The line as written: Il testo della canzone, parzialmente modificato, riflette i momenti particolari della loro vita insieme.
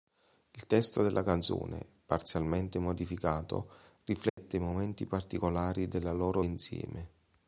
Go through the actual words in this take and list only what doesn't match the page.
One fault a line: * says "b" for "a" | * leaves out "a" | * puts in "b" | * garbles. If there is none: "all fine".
* leaves out "vita"